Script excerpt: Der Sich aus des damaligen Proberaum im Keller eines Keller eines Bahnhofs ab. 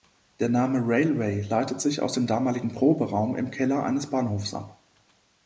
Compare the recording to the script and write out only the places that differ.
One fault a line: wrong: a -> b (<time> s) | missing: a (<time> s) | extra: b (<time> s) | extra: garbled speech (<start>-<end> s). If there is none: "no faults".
extra: Name Railway leitet (0.5 s)
wrong: des -> dem (2.1 s)
missing: Keller eines (4.1 s)